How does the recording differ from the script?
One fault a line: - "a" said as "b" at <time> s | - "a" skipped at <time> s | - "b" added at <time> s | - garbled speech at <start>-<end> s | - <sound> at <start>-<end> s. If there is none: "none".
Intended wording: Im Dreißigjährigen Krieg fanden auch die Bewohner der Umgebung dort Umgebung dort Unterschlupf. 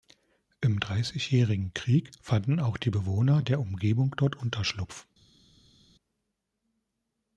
- "Umgebung dort" skipped at 4.4 s